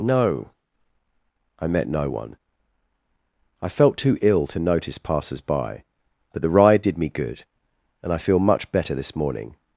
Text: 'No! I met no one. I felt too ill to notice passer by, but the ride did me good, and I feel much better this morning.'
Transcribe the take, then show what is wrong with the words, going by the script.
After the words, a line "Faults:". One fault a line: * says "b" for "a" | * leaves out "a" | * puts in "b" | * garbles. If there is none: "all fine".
'No! I met no one. I felt too ill to notice passers by, but the ride did me good, and I feel much better this morning.'
Faults:
* says "passers" for "passer"